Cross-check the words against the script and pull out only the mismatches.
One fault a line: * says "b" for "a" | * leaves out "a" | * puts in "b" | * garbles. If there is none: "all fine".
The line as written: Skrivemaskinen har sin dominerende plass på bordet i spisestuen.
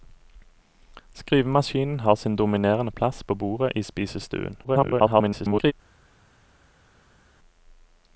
* garbles